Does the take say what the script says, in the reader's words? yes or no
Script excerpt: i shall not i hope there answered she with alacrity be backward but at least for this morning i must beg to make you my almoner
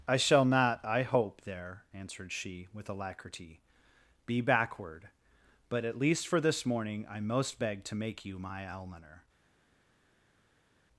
no